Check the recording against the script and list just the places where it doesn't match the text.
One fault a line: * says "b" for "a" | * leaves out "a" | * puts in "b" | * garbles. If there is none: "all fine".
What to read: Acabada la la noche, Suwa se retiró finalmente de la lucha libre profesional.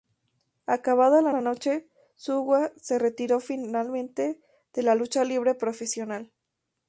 all fine